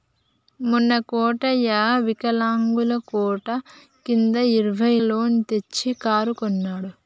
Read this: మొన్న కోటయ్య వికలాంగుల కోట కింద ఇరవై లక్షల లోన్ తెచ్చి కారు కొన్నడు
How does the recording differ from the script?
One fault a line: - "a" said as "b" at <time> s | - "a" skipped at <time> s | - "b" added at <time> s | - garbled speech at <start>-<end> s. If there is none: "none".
- "లక్షల" skipped at 4.9 s